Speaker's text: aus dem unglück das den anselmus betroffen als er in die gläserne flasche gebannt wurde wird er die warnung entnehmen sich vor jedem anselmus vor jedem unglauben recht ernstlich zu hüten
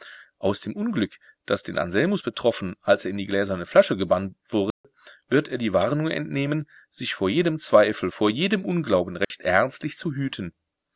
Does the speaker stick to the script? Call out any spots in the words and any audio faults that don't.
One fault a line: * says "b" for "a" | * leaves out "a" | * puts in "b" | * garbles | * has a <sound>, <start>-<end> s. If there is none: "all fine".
* has a dropout, 4.7-4.8 s
* says "zweifel" for "anselmus"
* has a dropout, 9.2-9.3 s